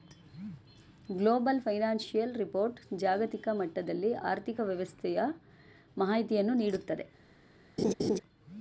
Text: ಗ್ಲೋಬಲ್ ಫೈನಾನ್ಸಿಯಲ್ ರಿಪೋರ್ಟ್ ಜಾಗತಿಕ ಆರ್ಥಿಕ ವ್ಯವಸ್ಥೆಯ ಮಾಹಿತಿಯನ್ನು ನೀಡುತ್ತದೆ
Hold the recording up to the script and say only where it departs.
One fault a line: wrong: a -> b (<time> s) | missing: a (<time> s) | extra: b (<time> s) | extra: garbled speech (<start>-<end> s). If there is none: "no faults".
extra: ಮಟ್ಟದಲ್ಲಿ (3.5 s)